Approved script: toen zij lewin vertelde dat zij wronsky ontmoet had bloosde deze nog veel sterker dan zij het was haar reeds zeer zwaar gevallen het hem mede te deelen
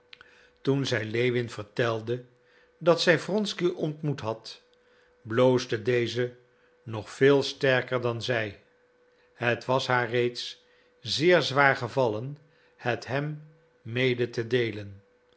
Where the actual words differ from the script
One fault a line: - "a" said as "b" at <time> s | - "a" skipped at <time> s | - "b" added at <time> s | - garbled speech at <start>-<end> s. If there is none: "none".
none